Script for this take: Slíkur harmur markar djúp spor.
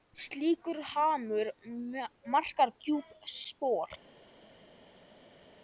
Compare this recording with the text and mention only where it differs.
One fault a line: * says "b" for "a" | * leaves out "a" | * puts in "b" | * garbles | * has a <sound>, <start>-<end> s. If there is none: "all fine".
all fine